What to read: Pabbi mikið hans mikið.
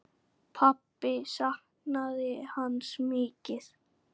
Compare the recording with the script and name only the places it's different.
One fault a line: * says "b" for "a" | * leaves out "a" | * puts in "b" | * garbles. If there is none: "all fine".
* says "saknaði" for "mikið"